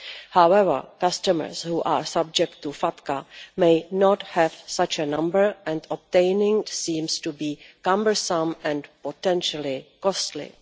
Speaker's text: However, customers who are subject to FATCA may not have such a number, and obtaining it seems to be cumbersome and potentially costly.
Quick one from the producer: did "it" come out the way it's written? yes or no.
no